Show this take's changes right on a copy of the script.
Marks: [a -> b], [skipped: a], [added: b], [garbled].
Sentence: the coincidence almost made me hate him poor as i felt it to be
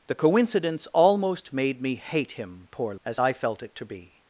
the coincidence almost made me hate him poor as i felt it to be